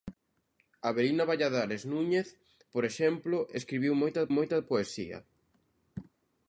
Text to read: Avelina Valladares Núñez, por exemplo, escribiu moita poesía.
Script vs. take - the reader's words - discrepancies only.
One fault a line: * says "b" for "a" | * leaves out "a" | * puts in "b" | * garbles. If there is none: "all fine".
* puts in "moita"